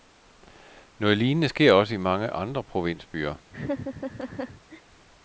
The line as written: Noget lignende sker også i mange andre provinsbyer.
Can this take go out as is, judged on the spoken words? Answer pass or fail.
pass